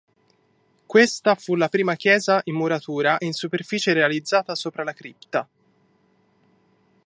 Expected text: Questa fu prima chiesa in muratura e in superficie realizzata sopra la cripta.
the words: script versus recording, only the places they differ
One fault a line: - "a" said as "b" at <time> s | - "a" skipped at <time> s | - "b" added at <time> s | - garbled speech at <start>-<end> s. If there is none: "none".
- "la" added at 1.5 s